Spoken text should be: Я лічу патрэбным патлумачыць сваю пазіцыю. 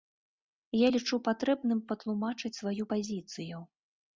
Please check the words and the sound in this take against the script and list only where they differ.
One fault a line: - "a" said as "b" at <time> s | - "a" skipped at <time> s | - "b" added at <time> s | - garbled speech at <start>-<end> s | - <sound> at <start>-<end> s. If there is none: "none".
none